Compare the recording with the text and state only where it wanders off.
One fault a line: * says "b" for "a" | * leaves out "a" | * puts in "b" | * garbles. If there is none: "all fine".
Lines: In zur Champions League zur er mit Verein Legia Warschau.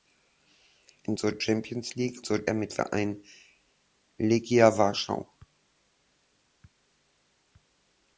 all fine